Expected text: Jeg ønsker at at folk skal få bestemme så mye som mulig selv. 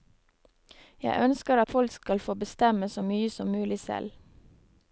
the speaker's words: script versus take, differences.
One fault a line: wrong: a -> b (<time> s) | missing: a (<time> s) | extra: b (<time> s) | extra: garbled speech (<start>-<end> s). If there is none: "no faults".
missing: at (1.7 s)